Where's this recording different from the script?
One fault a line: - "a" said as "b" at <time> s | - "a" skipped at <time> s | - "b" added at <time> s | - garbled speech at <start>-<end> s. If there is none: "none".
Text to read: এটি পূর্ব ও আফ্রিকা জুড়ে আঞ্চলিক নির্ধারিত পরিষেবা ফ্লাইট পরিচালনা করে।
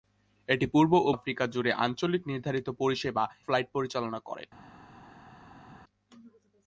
none